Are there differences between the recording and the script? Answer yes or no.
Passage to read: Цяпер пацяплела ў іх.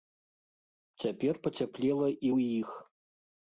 yes